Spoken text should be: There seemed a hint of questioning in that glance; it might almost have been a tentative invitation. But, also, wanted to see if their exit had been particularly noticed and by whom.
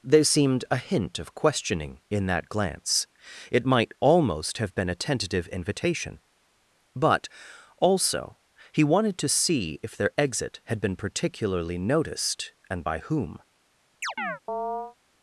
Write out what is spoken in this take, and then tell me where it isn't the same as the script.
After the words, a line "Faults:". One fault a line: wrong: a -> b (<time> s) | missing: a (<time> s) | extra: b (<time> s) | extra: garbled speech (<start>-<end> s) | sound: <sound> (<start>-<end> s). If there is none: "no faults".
There seemed a hint of questioning in that glance; it might almost have been a tentative invitation. But, also, he wanted to see if their exit had been particularly noticed and by whom.
Faults:
extra: he (8.7 s)
sound: chirp (14.0-15.0 s)